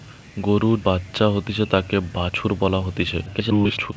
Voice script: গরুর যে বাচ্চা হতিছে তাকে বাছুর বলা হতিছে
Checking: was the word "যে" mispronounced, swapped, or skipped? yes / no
yes